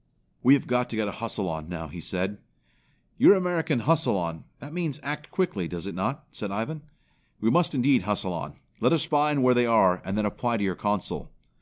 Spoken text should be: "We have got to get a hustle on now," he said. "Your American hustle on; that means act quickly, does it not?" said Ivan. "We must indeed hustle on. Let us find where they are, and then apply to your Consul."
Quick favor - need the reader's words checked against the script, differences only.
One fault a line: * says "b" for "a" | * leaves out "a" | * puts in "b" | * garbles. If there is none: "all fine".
all fine